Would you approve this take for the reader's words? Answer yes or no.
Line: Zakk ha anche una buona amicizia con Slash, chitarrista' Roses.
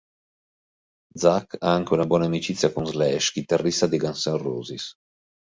no